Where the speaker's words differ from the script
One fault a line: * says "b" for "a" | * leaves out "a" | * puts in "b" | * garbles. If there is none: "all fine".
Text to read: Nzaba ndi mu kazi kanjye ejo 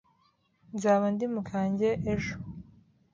* leaves out "kazi"